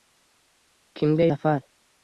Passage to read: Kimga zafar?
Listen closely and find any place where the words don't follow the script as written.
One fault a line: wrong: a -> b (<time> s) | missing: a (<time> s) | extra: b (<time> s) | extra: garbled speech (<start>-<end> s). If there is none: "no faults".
no faults